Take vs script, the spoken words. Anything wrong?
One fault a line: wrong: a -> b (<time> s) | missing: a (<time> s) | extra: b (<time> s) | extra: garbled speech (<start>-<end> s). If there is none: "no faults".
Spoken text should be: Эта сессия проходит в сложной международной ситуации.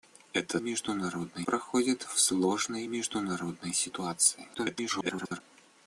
wrong: сессия -> международной (0.6 s)
extra: garbled speech (4.5-5.4 s)